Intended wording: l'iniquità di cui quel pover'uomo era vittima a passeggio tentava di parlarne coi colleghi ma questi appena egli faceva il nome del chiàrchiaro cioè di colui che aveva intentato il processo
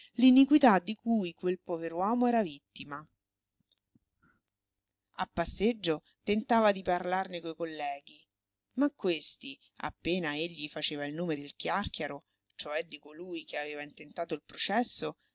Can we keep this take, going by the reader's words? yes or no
yes